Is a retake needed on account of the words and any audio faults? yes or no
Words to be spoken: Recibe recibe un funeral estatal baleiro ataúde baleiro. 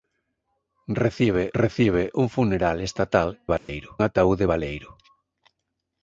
yes